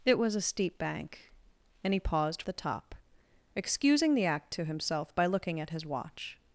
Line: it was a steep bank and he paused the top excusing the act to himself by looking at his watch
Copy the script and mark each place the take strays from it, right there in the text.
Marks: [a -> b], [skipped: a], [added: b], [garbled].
it was a steep bank and he paused the top excusing the act to himself by looking at his watch